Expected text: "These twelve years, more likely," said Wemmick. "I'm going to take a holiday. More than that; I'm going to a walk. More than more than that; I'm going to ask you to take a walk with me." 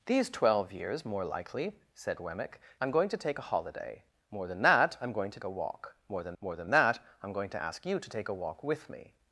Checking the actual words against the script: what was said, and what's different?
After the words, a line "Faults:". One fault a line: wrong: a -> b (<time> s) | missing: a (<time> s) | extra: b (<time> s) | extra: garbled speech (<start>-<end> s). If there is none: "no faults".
"These twelve years, more likely," said Wemmick. "I'm going to take a holiday. More than that; I'm going to a walk. More than more than that; I'm going to ask you to take a walk with me."
Faults:
no faults